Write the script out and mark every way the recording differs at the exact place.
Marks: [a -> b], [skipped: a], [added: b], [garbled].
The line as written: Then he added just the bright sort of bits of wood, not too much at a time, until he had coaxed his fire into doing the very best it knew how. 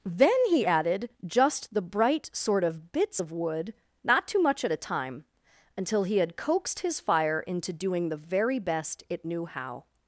Then he added just the bright sort of bits of wood, not too much at a time, until he had coaxed his fire into doing the very best it knew how.